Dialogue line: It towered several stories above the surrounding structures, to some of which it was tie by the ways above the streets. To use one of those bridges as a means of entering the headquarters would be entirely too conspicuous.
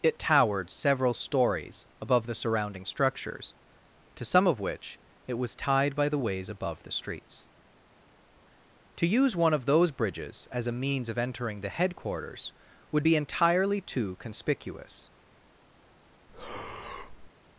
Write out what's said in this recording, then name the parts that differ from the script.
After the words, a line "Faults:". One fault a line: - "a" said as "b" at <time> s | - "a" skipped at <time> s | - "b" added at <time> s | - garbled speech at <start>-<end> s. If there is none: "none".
It towered several stories above the surrounding structures, to some of which it was tied by the ways above the streets. To use one of those bridges as a means of entering the headquarters would be entirely too conspicuous.
Faults:
- "tie" said as "tied" at 5.5 s